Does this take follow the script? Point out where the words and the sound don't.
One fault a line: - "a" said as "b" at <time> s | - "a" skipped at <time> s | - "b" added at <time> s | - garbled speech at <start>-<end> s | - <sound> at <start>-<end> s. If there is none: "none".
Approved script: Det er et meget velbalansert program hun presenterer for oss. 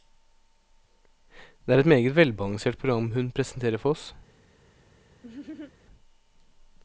- laugh at 5.2-5.7 s